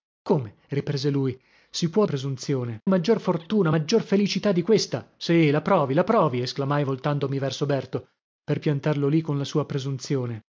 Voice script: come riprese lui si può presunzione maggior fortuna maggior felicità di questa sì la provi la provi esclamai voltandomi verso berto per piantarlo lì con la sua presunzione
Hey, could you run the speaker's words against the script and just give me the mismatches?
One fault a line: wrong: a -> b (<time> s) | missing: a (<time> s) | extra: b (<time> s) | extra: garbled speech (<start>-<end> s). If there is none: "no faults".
no faults